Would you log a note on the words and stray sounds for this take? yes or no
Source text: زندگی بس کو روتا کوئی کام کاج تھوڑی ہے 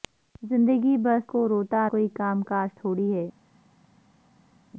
no